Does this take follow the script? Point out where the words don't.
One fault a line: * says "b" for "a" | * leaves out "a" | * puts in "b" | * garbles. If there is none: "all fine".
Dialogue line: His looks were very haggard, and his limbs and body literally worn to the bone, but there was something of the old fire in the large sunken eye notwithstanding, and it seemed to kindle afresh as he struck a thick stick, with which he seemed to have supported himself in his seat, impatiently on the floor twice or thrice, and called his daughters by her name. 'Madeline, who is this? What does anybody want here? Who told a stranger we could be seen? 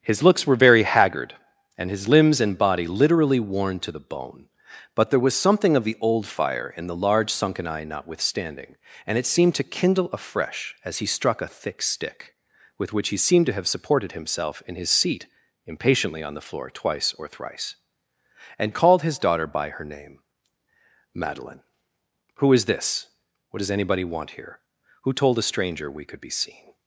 * says "daughter" for "daughters"